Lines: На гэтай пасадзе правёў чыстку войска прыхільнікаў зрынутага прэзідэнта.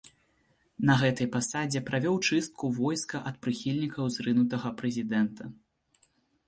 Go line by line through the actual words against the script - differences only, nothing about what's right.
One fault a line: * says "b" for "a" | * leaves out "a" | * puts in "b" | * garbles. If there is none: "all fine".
* puts in "ад"